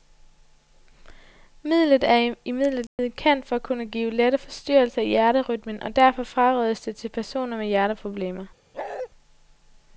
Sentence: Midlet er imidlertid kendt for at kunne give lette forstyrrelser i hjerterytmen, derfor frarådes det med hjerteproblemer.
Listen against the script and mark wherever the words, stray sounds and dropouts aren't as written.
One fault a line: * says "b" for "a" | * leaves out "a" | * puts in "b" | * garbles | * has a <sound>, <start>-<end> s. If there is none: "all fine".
* has a dropout, 2.9-3.0 s
* puts in "og"
* puts in "til personer"
* has a bark, 8.7-9.1 s